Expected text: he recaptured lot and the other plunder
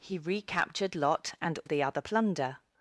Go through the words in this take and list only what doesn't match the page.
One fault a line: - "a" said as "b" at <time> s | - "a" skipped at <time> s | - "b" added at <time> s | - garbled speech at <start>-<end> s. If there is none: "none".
none